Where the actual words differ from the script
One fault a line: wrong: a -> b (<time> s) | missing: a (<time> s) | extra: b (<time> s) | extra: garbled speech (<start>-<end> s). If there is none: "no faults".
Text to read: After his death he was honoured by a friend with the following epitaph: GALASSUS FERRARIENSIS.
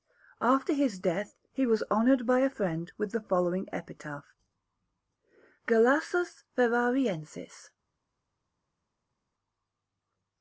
no faults